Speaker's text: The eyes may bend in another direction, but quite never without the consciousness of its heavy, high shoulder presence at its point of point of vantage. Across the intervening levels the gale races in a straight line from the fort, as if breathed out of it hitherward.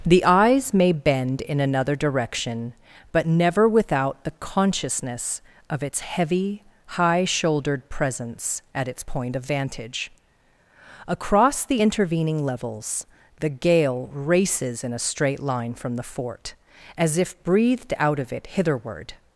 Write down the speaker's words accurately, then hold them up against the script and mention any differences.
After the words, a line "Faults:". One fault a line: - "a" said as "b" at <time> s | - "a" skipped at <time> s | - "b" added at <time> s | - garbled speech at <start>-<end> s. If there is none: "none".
The eyes may bend in another direction, but never without the consciousness of its heavy, high shouldered presence at its point of vantage. Across the intervening levels the gale races in a straight line from the fort, as if breathed out of it hitherward.
Faults:
- "quite" skipped at 3.3 s
- "shoulder" said as "shouldered" at 7.2 s
- "point of" skipped at 9.4 s